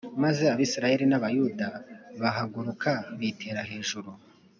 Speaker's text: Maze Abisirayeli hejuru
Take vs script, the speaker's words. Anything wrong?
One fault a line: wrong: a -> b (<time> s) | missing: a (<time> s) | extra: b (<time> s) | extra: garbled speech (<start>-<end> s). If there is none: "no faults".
extra: n'Abayuda bahaguruka bitera (1.1 s)